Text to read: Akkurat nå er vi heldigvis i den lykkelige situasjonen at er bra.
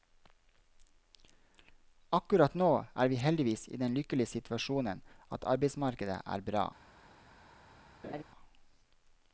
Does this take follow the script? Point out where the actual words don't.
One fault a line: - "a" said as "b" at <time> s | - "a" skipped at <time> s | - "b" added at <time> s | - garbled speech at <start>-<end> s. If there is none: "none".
- "arbeidsmarkedet" added at 5.5 s